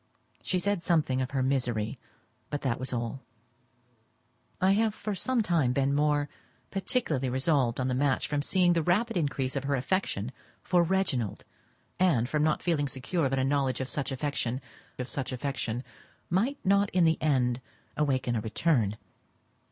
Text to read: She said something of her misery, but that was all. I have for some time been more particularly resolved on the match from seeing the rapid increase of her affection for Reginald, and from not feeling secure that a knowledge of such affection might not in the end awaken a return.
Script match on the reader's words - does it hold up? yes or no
no